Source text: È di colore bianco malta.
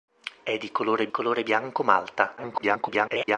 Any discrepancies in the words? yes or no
yes